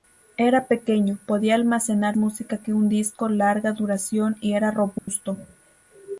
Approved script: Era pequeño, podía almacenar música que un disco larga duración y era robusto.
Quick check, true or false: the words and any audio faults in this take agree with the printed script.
false